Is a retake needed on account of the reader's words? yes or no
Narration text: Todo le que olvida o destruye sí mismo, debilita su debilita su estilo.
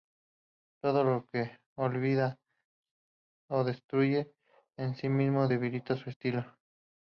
yes